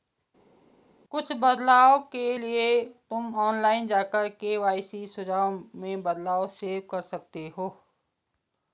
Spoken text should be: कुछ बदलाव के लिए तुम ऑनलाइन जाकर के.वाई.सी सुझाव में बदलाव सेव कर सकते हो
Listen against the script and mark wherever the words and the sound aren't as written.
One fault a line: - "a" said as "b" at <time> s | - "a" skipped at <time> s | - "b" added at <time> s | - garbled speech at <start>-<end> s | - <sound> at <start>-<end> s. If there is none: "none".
none